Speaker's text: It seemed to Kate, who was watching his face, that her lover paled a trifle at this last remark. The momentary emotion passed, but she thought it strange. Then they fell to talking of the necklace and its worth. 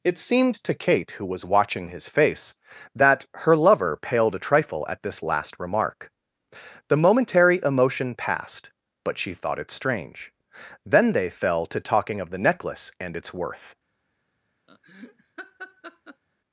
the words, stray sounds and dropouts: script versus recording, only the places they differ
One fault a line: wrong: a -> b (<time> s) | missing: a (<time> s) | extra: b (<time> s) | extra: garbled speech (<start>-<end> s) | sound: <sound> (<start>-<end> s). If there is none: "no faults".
sound: laugh (14.7-16.2 s)